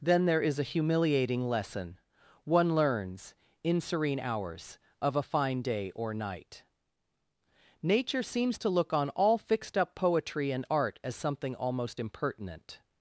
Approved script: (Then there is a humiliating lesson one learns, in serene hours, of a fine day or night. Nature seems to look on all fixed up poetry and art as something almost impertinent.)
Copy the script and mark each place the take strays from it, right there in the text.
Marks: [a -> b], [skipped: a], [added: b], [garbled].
(Then there is a humiliating lesson one learns, in serene hours, of a fine day or night. Nature seems to look on all fixed up poetry and art as something almost impertinent.)